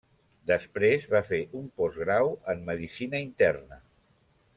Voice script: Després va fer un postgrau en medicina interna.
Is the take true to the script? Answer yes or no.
yes